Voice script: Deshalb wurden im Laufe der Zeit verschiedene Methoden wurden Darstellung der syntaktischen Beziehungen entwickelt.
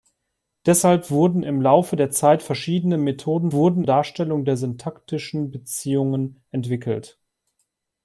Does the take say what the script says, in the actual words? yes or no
yes